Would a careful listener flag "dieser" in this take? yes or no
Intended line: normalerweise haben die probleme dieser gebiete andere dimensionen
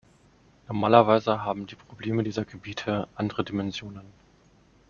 no